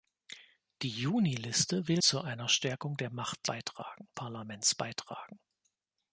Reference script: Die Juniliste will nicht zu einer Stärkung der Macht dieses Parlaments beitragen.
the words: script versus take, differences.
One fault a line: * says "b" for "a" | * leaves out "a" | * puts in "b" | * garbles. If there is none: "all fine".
* leaves out "nicht"
* says "beitragen" for "dieses"